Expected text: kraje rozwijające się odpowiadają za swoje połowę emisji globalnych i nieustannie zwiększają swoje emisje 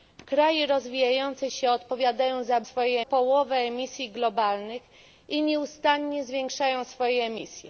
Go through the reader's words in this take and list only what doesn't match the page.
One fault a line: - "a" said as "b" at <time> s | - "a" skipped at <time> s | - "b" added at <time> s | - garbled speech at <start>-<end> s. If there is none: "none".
none